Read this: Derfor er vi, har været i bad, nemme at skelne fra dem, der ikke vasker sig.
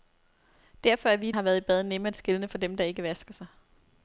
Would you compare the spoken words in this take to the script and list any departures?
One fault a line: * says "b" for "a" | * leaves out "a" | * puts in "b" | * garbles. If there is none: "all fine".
all fine